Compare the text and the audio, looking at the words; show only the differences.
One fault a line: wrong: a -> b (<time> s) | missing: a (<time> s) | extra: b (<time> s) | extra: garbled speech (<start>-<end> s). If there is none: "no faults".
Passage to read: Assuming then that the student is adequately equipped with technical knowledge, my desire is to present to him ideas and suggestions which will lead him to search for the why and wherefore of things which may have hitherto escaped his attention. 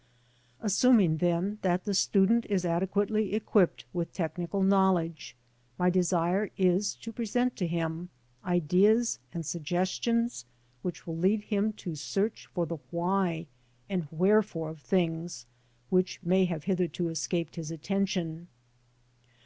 no faults